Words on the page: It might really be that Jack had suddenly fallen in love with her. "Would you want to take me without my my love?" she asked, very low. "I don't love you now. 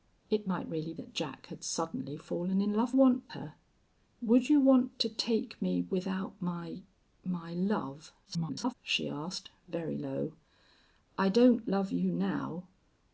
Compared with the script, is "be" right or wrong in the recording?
wrong